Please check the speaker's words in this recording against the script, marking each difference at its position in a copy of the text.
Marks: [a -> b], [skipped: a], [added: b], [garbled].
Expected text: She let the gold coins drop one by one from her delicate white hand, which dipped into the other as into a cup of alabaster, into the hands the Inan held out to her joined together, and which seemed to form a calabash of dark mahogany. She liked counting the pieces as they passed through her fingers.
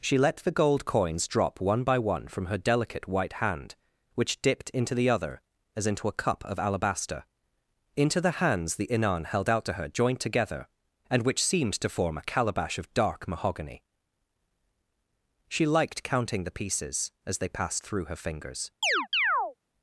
She let the gold coins drop one by one from her delicate white hand, which dipped into the other as into a cup of alabaster, into the hands the Inan held out to her joined together, and which seemed to form a calabash of dark mahogany. She liked counting the pieces as they passed through her fingers.